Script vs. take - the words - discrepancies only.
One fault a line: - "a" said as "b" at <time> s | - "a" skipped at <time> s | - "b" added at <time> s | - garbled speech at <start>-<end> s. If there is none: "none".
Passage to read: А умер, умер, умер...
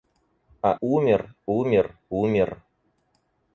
none